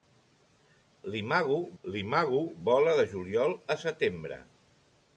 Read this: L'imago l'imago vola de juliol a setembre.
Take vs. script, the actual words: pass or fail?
pass